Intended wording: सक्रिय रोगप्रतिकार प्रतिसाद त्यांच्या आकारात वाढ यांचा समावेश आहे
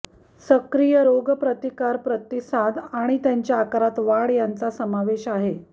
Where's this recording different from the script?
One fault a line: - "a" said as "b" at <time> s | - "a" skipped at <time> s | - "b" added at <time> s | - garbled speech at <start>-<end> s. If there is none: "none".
- "आणि" added at 2.9 s